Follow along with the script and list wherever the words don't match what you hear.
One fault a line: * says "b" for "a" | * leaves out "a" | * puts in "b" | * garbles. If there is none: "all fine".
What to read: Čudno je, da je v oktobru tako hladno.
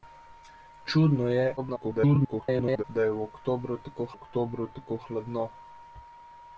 * garbles
* puts in "oktobru tako"